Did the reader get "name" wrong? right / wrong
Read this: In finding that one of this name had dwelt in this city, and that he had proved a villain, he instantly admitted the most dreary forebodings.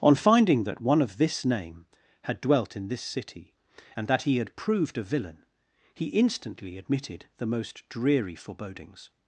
right